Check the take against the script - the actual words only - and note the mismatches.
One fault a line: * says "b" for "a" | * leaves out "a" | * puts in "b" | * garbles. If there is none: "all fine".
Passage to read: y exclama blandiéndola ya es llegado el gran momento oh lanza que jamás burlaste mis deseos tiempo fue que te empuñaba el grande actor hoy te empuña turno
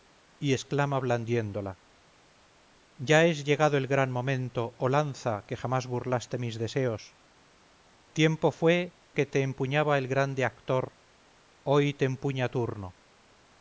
all fine